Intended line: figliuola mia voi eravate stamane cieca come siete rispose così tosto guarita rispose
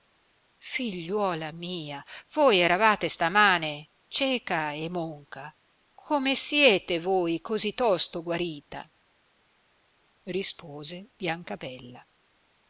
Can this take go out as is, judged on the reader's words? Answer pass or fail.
fail